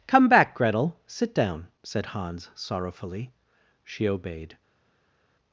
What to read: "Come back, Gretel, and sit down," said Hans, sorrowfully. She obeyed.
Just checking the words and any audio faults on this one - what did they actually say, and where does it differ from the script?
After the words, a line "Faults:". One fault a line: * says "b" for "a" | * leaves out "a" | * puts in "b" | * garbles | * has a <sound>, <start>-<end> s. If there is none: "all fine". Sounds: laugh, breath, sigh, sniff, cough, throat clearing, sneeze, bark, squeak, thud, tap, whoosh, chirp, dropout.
"Come back, Gretel, sit down," said Hans, sorrowfully. She obeyed.
Faults:
* leaves out "and"